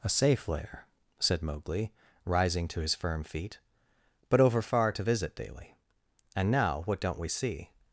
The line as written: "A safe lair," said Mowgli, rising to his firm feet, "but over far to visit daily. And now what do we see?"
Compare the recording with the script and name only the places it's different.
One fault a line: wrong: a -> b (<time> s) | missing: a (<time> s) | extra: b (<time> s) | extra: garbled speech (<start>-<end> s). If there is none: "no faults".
wrong: do -> don't (7.0 s)